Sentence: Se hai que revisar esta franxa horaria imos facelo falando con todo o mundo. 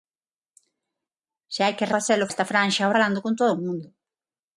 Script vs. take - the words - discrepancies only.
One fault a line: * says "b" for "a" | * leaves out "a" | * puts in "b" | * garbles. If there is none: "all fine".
* says "facelo" for "revisar"
* leaves out "horaria imos facelo"